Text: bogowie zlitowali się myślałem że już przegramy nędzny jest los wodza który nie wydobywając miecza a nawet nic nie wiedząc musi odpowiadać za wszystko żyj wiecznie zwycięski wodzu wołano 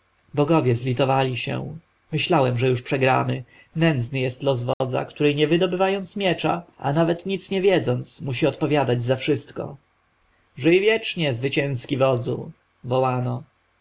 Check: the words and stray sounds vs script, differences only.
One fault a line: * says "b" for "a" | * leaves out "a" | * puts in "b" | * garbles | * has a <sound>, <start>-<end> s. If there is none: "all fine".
* has a dropout, 4.7-4.8 s